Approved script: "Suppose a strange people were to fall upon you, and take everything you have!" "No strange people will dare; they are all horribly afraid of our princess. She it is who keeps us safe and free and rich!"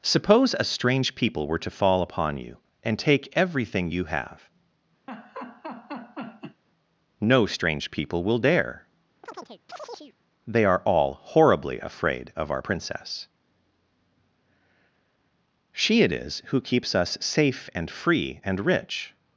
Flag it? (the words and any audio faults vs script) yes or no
yes